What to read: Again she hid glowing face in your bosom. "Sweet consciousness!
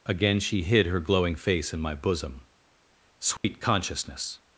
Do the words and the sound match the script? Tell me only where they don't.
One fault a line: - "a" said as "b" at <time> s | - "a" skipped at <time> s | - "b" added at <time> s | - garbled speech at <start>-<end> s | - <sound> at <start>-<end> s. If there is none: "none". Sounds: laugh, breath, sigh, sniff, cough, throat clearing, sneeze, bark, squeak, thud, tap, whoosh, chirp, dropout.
- "her" added at 0.9 s
- "your" said as "my" at 1.8 s
- dropout at 3.4-3.4 s